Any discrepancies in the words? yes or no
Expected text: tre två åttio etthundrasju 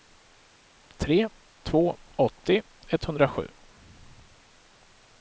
no